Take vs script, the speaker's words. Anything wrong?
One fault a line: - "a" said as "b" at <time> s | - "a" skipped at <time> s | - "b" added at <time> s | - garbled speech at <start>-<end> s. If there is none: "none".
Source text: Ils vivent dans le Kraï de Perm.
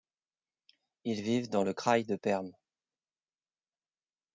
none